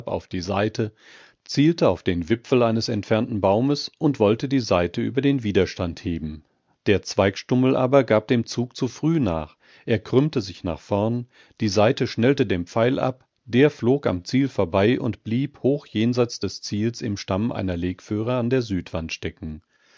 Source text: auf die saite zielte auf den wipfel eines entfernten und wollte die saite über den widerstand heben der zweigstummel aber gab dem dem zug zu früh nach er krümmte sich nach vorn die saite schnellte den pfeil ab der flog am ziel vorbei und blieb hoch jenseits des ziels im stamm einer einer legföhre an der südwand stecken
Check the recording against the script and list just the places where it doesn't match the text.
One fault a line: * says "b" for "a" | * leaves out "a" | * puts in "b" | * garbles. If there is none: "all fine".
* puts in "baumes"
* leaves out "dem"
* leaves out "einer"